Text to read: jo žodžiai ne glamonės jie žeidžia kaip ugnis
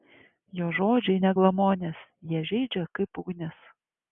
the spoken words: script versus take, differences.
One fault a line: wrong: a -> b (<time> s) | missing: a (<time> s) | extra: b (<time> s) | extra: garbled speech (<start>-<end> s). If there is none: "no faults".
no faults